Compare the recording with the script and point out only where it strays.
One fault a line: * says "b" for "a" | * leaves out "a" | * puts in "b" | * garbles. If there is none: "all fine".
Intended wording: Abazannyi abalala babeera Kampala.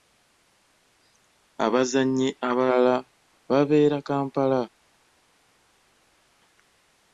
all fine